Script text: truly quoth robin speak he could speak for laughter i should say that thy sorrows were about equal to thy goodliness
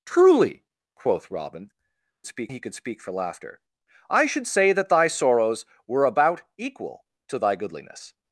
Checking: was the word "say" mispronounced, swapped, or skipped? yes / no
no